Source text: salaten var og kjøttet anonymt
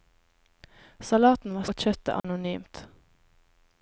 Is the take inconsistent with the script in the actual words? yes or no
no